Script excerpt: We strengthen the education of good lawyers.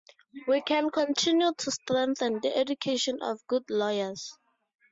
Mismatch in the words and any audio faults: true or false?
true